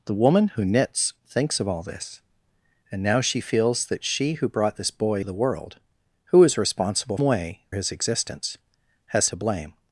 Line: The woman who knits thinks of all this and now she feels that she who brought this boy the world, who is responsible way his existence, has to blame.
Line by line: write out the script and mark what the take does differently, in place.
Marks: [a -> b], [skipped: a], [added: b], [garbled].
The woman who knits thinks of all this and now she feels that she who brought this boy the world, who is responsible way his existence, has to blame.